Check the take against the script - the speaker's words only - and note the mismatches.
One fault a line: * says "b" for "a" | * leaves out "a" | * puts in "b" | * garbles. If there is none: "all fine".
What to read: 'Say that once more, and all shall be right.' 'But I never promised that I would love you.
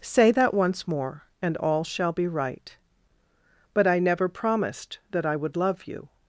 all fine